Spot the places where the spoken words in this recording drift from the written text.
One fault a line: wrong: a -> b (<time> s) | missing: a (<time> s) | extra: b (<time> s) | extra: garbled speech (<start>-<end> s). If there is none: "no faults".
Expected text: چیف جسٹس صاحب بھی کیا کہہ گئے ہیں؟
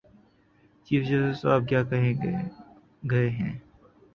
missing: بھی (1.6 s)